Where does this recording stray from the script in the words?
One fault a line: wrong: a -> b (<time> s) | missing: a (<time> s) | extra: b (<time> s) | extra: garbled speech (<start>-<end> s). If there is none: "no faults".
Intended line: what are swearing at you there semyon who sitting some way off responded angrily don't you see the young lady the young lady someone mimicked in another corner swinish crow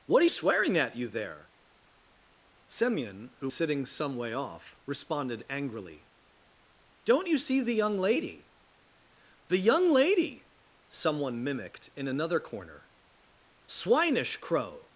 no faults